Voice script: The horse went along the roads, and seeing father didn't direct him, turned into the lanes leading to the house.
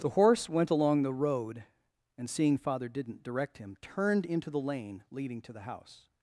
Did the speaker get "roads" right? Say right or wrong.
wrong